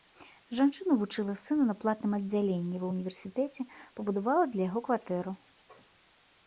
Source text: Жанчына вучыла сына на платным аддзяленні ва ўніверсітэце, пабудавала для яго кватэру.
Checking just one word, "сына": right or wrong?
right